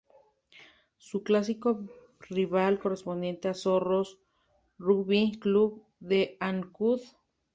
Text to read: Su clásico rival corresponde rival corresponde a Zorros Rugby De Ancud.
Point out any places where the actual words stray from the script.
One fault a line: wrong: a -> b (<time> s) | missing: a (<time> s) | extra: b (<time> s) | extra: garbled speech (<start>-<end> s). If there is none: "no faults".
missing: rival corresponde (3.4 s)
extra: Club (5.4 s)